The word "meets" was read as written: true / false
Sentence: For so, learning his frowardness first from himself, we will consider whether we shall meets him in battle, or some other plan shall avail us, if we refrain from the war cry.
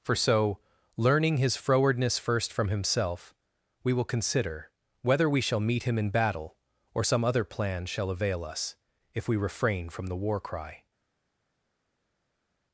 false